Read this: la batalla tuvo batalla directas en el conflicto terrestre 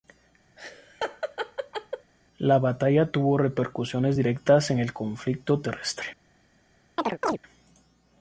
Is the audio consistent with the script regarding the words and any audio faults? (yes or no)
no